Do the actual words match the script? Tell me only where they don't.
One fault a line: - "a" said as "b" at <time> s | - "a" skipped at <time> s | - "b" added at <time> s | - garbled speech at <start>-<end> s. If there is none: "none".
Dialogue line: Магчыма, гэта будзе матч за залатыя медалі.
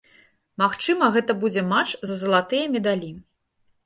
none